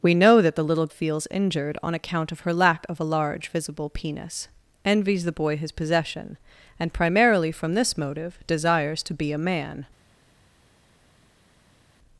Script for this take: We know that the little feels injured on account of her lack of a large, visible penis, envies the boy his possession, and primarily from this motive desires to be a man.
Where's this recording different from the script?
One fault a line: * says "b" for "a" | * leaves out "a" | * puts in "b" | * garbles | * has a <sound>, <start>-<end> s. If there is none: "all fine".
all fine